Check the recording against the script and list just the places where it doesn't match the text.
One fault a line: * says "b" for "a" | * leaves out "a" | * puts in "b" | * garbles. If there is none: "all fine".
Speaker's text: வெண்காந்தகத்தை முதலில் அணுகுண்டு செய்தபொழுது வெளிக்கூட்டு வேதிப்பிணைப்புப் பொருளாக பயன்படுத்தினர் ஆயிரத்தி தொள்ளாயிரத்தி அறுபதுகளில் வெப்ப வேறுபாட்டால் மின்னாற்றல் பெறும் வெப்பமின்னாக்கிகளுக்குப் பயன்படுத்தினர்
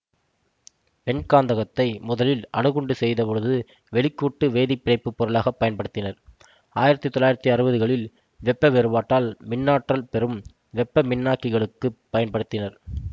all fine